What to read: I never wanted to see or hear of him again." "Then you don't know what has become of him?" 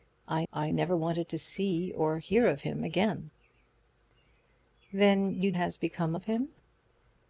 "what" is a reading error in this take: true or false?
true